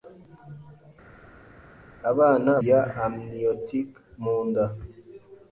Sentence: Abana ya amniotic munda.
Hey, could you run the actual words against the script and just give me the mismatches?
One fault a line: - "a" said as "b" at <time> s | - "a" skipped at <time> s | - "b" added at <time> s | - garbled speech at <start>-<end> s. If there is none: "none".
none